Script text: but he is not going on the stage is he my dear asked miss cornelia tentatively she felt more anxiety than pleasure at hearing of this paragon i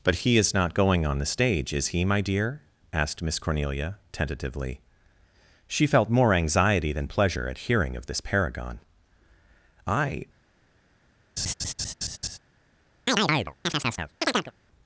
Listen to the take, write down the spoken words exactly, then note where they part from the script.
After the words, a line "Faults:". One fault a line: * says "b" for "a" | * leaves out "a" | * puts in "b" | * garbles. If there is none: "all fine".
but he is not going on the stage is he my dear asked miss cornelia tentatively she felt more anxiety than pleasure at hearing of this paragon i
Faults:
all fine